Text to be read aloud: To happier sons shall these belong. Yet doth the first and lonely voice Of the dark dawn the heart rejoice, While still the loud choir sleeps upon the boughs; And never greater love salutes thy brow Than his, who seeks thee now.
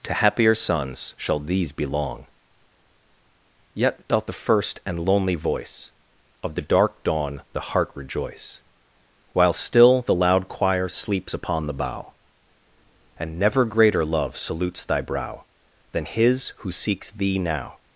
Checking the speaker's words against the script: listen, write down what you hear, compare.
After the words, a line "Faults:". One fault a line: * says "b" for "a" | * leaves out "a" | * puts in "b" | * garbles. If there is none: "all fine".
To happier sons shall these belong. Yet doth the first and lonely voice Of the dark dawn the heart rejoice, While still the loud choir sleeps upon the bough; And never greater love salutes thy brow Than his, who seeks thee now.
Faults:
* says "bough" for "boughs"